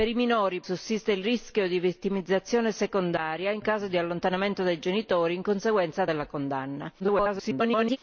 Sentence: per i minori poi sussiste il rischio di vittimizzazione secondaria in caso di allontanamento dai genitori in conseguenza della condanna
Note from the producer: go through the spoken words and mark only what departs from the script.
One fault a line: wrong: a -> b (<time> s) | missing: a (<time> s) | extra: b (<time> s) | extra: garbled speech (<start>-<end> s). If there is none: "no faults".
missing: poi (0.6 s)
extra: garbled speech (7.0-8.0 s)